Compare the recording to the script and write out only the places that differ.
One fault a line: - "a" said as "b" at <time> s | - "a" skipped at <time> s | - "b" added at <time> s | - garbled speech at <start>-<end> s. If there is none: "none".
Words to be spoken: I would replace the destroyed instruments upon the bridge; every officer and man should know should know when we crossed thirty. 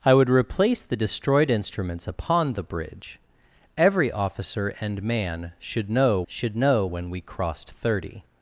none